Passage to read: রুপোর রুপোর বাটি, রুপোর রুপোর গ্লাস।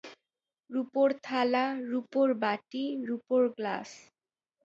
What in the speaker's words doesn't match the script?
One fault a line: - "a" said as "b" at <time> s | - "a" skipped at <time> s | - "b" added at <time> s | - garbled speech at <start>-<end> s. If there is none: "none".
- "থালা" added at 1.2 s
- "রুপোর" skipped at 3.4 s